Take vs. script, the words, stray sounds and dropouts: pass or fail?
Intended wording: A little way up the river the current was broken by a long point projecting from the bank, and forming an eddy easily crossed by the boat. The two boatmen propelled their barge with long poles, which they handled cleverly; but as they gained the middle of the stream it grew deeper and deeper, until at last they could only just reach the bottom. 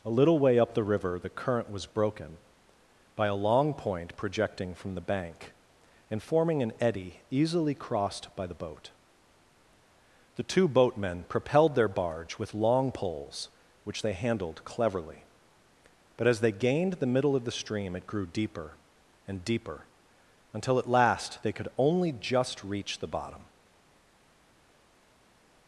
pass